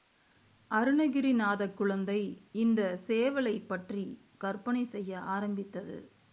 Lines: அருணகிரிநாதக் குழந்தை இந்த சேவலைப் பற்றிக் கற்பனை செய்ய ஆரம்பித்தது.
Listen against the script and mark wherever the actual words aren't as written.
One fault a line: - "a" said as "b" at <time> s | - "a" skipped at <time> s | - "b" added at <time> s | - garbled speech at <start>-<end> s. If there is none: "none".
none